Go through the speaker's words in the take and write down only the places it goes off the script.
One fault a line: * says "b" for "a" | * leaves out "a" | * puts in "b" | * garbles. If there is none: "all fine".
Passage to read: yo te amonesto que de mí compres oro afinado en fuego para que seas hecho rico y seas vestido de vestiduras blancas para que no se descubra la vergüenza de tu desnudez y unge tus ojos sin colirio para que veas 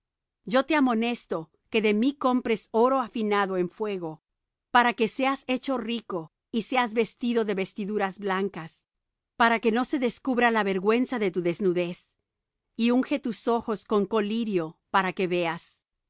* says "con" for "sin"